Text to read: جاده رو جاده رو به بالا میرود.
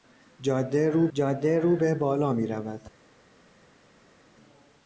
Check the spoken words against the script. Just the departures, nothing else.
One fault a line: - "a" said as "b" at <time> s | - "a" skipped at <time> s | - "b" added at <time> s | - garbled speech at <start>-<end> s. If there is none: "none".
none